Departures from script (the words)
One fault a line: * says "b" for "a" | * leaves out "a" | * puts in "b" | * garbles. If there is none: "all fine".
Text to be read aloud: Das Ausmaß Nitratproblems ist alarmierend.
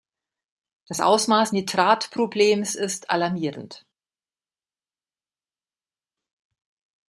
all fine